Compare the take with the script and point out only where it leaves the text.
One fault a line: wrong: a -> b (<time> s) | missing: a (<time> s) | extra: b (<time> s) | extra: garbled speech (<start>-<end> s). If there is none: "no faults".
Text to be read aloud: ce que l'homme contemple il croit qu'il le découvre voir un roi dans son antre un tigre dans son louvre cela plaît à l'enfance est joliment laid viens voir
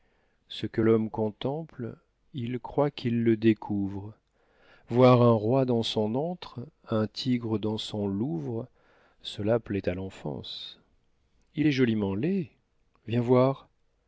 extra: il (11.6 s)